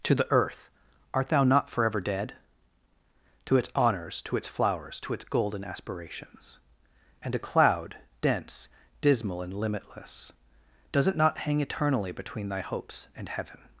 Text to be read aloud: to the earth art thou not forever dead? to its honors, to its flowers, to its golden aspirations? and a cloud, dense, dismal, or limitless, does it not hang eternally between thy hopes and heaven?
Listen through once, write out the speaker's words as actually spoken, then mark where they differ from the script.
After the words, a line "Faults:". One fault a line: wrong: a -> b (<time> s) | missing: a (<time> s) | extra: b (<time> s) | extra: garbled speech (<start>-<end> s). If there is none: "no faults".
to the earth art thou not forever dead? to its honors, to its flowers, to its golden aspirations? and a cloud, dense, dismal, and limitless, does it not hang eternally between thy hopes and heaven?
Faults:
wrong: or -> and (9.4 s)